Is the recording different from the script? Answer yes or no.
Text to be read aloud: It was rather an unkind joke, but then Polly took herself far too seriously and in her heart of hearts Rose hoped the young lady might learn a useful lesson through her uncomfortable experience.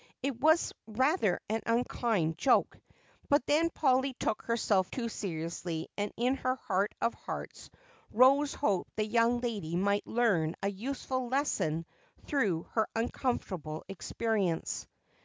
yes